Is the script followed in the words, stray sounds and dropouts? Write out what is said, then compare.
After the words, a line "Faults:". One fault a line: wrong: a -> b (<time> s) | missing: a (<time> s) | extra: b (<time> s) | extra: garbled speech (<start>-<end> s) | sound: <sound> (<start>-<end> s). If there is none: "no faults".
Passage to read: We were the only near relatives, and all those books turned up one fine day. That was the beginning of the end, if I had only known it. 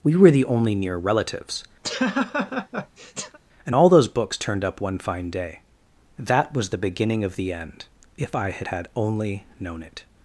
We were the only near relatives, and all those books turned up one fine day. That was the beginning of the end, if I had had only known it.
Faults:
sound: laugh (1.8-3.4 s)
extra: had (8.7 s)